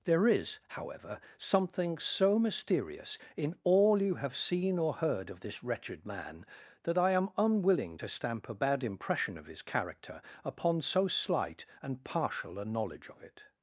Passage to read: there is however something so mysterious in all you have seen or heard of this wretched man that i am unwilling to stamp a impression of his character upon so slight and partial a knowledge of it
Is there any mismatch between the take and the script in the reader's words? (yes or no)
yes